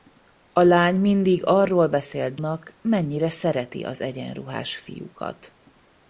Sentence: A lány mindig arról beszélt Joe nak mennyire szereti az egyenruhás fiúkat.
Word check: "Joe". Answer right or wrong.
wrong